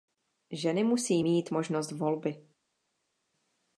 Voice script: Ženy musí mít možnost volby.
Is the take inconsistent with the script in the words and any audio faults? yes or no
no